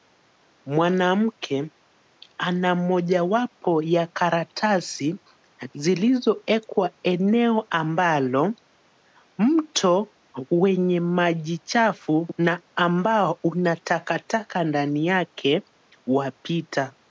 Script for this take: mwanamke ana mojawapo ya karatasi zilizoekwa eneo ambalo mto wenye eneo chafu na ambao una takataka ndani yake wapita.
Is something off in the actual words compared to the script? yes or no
yes